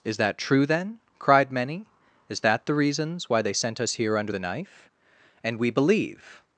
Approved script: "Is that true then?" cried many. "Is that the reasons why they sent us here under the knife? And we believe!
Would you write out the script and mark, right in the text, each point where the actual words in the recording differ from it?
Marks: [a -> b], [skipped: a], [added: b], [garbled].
"Is that true then?" cried many. "Is that the reasons why they sent us here under the knife? And we believe!